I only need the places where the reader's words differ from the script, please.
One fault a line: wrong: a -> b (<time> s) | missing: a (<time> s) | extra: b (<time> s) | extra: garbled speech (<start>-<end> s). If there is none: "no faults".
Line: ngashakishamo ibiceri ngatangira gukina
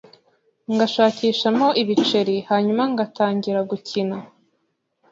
extra: hanyuma (2.5 s)